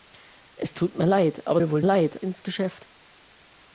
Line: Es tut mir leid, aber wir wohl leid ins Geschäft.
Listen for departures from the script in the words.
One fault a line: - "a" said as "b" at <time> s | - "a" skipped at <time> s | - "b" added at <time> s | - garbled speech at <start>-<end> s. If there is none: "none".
none